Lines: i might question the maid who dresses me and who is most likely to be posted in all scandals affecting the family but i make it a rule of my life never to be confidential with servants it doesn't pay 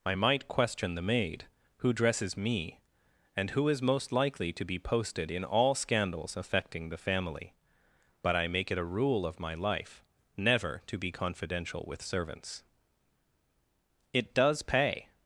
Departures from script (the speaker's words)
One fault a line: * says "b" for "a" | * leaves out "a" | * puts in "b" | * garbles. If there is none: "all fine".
* says "does" for "doesn't"